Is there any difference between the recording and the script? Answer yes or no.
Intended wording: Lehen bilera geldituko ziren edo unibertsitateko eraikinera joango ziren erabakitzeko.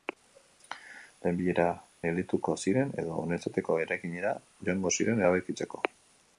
no